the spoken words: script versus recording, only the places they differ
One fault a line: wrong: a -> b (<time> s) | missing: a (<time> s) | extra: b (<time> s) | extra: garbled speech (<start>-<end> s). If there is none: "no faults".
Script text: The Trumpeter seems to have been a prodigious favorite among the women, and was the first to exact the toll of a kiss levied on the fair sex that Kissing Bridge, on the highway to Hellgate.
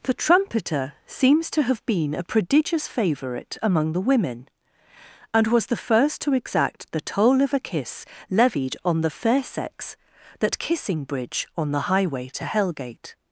no faults